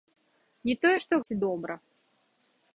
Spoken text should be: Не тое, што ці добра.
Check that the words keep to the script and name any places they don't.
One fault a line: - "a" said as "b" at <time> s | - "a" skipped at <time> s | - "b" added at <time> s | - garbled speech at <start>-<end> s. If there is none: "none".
none